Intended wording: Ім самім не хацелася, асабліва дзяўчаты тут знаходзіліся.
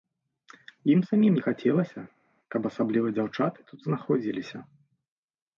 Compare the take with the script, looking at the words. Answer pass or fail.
fail